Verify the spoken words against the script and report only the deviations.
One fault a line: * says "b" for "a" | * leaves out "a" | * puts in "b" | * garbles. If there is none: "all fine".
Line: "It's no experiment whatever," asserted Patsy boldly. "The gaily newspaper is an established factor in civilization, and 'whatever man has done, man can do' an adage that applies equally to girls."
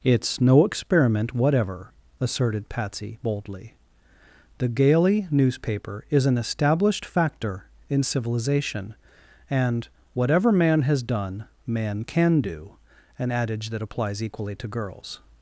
all fine